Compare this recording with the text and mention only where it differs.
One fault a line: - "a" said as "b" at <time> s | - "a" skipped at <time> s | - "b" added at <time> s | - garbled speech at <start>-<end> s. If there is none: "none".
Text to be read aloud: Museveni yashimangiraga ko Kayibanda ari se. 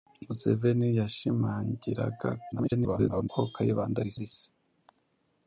- garbled speech at 2.5-3.3 s
- "ari" added at 4.2 s